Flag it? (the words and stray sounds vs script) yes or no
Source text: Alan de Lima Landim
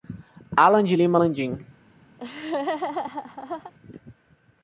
yes